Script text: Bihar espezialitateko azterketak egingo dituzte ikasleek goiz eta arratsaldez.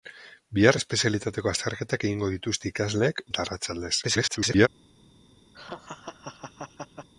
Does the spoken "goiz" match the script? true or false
false